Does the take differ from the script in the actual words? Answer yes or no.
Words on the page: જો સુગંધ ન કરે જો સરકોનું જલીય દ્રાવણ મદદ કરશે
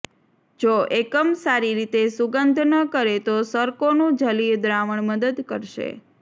yes